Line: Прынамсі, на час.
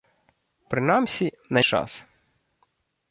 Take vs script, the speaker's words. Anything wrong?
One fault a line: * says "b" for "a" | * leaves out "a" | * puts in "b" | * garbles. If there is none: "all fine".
all fine